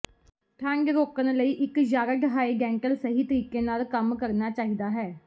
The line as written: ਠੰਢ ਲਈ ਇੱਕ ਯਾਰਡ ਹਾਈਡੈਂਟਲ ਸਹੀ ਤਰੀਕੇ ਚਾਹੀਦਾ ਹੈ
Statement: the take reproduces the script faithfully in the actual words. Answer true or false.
false